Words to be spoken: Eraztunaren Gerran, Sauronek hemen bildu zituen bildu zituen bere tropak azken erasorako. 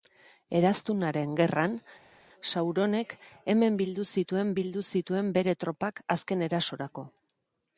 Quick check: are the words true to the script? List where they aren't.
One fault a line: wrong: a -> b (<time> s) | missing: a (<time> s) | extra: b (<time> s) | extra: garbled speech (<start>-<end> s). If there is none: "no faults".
no faults